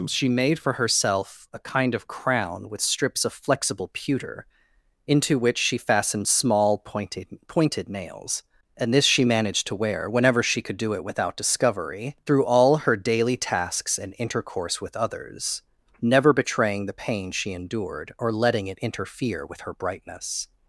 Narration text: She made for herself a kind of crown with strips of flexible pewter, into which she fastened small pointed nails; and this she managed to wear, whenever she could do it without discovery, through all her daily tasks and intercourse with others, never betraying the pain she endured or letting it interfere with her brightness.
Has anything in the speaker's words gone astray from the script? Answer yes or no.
yes